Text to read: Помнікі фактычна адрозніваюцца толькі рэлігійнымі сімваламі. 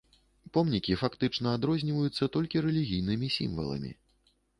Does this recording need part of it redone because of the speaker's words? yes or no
no